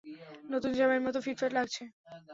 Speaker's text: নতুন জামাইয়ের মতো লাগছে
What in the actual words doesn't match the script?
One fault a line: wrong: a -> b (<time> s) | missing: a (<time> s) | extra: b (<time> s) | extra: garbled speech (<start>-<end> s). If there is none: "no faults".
extra: ফিটফাট (1.2 s)